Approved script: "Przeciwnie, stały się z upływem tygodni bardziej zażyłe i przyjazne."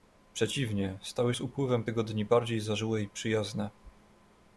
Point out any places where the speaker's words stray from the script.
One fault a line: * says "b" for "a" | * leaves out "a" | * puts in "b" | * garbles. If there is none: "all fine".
* leaves out "się"